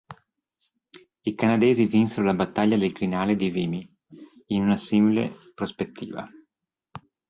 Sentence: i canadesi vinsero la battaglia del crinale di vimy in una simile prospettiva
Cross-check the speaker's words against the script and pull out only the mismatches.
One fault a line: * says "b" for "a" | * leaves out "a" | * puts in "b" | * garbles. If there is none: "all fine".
all fine